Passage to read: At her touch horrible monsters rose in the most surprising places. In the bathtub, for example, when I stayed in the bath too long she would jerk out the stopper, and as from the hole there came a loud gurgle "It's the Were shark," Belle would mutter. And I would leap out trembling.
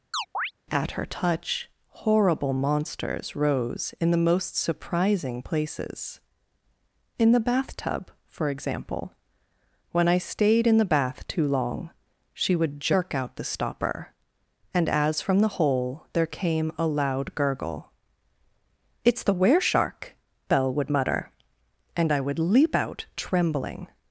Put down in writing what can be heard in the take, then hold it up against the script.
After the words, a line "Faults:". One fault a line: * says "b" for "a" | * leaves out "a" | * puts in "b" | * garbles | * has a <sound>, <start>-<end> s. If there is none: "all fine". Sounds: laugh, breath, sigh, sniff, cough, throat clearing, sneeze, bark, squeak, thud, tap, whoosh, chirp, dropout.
At her touch horrible monsters rose in the most surprising places. In the bathtub, for example, when I stayed in the bath too long she would jerk out the stopper, and as from the hole there came a loud gurgle "It's the Were shark," Belle would mutter. And I would leap out trembling.
Faults:
* has a chirp, 0.1-0.5 s